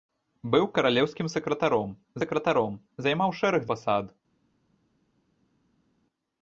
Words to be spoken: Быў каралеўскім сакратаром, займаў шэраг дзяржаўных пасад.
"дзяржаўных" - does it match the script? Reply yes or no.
no